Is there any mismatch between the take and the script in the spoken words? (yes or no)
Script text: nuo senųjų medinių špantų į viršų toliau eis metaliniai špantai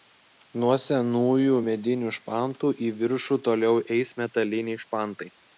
no